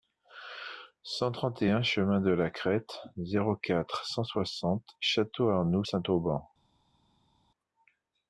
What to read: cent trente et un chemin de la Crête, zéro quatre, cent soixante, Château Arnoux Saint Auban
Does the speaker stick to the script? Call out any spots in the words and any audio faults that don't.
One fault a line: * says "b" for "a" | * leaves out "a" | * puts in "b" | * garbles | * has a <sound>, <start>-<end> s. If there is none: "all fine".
all fine